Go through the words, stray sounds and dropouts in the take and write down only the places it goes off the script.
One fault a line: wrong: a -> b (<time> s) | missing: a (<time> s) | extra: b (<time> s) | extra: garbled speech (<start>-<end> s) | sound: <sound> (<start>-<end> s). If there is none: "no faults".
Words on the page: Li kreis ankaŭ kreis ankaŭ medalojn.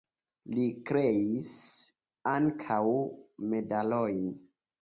missing: kreis ankaŭ (2.8 s)